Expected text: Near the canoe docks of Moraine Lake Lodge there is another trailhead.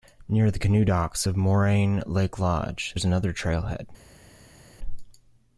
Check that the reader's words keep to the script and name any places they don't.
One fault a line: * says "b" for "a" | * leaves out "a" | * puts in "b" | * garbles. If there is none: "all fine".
* leaves out "there"